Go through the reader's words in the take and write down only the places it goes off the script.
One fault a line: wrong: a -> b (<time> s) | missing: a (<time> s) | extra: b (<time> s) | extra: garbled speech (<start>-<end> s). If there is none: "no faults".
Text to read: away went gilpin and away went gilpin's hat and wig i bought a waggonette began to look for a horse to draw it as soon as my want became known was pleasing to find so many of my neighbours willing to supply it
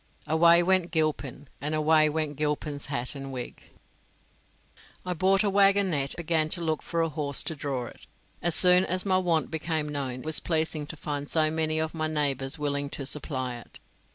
no faults